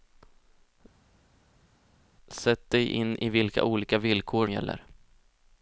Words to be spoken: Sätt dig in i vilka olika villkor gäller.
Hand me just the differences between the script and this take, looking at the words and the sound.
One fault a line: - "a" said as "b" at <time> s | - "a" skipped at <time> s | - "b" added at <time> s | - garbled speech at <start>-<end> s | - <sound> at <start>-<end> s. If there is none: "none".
none